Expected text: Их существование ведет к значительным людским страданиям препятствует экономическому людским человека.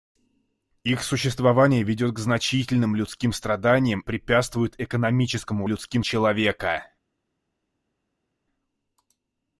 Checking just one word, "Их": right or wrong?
right